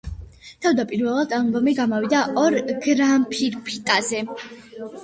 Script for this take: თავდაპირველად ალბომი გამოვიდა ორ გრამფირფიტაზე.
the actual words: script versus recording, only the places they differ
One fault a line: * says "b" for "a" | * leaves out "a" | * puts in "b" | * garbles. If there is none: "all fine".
all fine